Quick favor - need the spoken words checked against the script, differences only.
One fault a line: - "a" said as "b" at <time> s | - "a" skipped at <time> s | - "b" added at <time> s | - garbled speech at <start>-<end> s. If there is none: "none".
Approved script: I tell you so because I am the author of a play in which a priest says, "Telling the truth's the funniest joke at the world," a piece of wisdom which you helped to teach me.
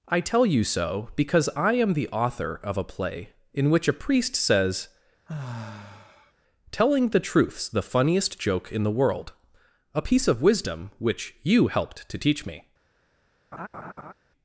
- "at" said as "in" at 8.7 s